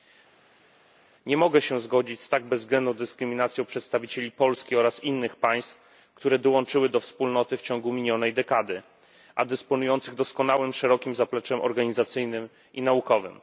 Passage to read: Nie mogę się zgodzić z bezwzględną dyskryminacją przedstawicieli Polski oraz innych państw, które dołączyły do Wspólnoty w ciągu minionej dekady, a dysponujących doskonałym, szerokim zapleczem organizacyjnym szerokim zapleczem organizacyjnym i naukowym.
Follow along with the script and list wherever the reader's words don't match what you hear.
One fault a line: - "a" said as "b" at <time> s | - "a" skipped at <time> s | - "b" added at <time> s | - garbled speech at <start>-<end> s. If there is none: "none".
- "tak" added at 2.3 s
- "szerokim zapleczem organizacyjnym" skipped at 12.5 s